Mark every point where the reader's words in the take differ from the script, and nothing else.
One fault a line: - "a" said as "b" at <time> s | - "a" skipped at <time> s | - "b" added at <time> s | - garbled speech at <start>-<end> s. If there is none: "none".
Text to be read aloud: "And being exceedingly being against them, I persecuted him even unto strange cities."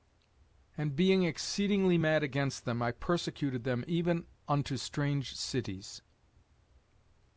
- "being" said as "mad" at 2.0 s
- "him" said as "them" at 3.6 s